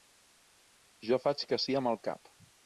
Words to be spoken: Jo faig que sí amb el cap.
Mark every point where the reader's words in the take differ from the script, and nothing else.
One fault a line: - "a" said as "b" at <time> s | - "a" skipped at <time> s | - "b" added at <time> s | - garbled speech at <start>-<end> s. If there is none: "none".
none